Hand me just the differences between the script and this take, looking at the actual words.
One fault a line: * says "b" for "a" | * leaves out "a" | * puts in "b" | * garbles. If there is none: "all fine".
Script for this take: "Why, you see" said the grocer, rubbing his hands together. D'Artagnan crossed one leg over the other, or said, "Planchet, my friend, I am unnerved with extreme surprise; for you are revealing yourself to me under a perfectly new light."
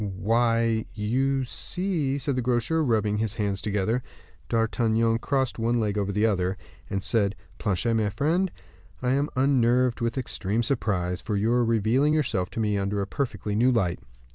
* says "and" for "or"